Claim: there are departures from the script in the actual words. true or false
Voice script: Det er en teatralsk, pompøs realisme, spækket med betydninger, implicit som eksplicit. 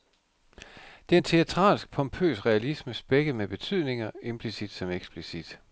false